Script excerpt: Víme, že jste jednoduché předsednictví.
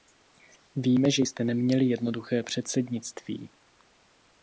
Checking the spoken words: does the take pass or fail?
fail